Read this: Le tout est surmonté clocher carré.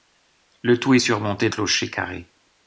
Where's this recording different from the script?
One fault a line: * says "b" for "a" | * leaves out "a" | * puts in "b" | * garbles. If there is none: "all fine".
all fine